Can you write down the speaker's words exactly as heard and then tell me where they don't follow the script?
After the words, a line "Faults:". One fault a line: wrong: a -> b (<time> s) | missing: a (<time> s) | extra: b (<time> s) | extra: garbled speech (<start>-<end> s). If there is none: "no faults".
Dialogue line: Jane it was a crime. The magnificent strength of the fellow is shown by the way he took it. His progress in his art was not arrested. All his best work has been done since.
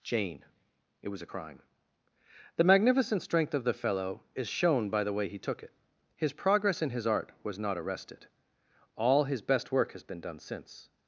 Jane it was a crime. The magnificent strength of the fellow is shown by the way he took it. His progress in his art was not arrested. All his best work has been done since.
Faults:
no faults